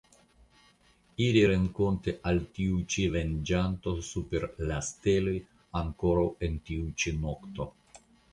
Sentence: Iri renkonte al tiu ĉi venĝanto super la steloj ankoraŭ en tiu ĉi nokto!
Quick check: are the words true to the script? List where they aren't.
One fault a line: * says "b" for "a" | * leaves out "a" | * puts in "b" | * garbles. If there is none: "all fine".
all fine